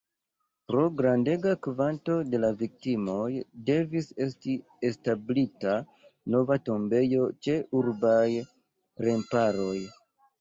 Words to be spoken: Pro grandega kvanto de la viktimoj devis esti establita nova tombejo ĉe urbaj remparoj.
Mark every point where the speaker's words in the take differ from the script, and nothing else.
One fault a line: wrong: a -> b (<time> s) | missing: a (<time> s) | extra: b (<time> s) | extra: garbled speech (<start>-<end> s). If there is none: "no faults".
no faults